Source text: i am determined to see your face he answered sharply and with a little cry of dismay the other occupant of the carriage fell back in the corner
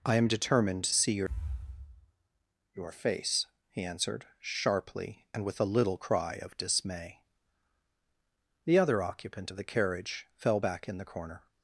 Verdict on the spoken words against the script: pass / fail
fail